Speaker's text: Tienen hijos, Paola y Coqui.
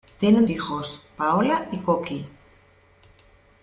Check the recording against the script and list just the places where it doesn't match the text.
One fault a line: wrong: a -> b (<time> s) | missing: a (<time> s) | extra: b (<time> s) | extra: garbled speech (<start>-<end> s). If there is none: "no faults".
no faults